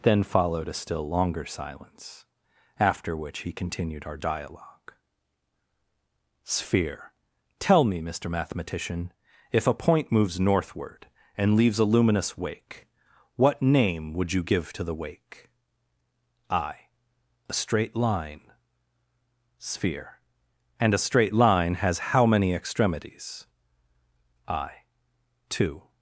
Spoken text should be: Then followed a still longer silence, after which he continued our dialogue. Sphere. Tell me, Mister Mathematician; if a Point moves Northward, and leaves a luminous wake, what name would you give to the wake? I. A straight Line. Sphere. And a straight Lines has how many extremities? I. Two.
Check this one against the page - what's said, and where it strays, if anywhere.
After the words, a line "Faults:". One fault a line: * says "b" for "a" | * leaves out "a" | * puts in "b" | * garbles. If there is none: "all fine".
Then followed a still longer silence, after which he continued our dialogue. Sphere. Tell me, Mister Mathematician; if a Point moves Northward, and leaves a luminous wake, what name would you give to the wake? I. A straight Line. Sphere. And a straight Line has how many extremities? I. Two.
Faults:
* says "Line" for "Lines"